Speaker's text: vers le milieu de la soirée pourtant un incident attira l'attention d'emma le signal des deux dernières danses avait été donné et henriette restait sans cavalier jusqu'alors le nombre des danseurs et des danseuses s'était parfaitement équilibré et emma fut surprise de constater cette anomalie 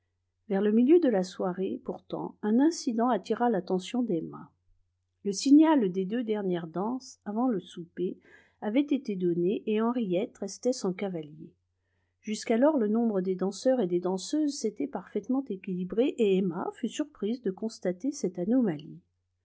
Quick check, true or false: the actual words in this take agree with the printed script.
false